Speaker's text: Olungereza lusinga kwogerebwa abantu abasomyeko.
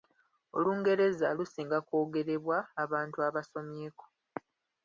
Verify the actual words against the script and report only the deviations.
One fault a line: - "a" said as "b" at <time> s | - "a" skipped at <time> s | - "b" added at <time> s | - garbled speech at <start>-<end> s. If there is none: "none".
none